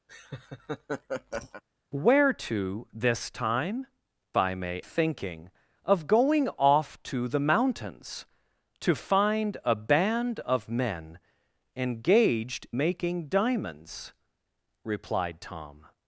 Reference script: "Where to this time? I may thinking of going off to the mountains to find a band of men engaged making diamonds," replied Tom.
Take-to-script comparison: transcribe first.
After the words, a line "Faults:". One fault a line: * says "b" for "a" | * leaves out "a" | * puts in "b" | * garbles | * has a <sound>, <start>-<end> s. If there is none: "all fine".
"Where to this time? I may thinking of going off to the mountains to find a band of men engaged making diamonds," replied Tom.
Faults:
* has a laugh, 0.1-1.6 s